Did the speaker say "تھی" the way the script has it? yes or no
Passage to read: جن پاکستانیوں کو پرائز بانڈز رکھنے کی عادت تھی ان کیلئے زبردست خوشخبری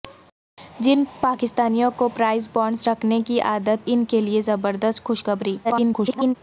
no